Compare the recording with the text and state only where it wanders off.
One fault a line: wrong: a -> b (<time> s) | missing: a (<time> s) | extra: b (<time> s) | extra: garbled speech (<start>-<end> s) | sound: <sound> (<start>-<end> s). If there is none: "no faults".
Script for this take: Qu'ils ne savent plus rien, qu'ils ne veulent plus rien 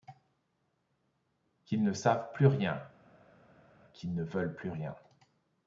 no faults